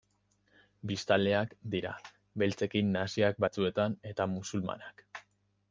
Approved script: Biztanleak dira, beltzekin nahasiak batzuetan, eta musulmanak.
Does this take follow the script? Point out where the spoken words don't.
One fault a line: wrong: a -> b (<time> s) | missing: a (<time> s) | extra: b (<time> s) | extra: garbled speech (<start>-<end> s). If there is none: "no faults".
no faults